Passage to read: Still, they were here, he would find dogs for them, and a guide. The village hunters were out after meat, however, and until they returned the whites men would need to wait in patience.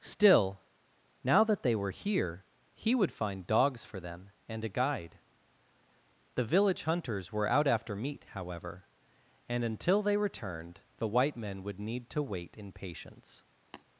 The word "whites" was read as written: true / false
false